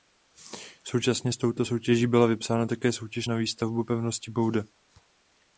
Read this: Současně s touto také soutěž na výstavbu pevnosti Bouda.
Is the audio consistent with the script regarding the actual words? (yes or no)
no